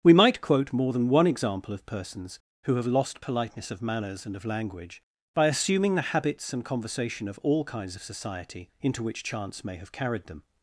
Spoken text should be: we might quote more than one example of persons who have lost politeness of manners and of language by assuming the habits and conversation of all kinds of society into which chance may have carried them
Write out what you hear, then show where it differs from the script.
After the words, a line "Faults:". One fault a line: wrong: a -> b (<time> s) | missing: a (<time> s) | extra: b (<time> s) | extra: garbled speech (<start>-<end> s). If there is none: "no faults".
we might quote more than one example of persons who have lost politeness of manners and of language by assuming the habits and conversation of all kinds of society into which chance may have carried them
Faults:
no faults